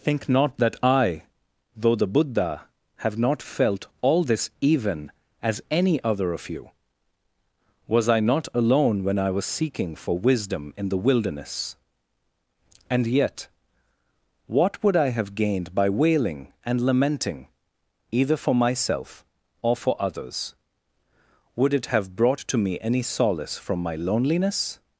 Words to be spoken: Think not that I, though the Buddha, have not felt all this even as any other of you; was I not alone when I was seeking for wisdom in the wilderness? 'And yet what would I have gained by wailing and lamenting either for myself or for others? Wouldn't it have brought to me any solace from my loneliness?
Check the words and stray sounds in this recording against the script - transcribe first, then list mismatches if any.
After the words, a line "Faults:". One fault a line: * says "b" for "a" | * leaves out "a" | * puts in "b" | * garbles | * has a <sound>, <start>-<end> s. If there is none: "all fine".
Think not that I, though the Buddha, have not felt all this even as any other of you; was I not alone when I was seeking for wisdom in the wilderness? 'And yet what would I have gained by wailing and lamenting either for myself or for others? Would it have brought to me any solace from my loneliness?
Faults:
* says "Would" for "Wouldn't"